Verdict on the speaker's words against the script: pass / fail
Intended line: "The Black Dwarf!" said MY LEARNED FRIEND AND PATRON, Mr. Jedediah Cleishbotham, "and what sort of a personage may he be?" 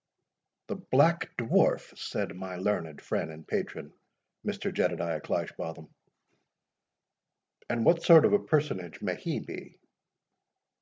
pass